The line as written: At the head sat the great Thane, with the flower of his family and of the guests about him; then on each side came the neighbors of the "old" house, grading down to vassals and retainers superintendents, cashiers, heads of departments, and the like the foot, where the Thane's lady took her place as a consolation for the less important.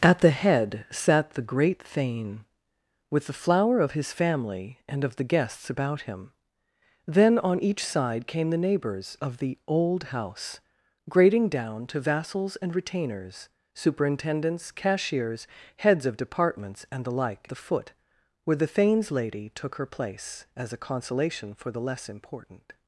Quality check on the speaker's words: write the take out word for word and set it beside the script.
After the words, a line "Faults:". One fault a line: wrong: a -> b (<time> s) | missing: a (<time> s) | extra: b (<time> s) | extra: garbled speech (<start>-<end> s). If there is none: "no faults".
At the head sat the great Thane, with the flower of his family and of the guests about him; then on each side came the neighbors of the "old" house, grading down to vassals and retainers superintendents, cashiers, heads of departments, and the like the foot, where the Thane's lady took her place as a consolation for the less important.
Faults:
no faults